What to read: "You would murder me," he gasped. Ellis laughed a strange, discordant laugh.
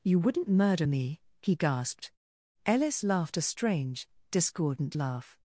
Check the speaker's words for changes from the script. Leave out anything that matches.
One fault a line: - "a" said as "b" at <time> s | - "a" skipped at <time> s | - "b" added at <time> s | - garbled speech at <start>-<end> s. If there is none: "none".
- "would" said as "wouldn't" at 0.2 s